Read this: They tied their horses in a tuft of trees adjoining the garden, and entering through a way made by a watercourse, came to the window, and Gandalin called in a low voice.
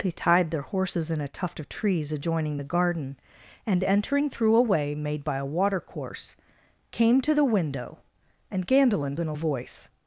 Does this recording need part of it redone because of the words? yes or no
yes